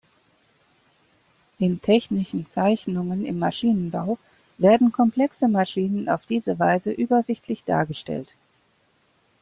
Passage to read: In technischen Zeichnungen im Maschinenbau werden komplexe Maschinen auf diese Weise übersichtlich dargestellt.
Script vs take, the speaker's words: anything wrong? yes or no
no